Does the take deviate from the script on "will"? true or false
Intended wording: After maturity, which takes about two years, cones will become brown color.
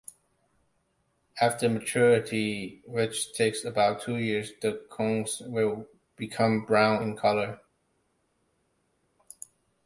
false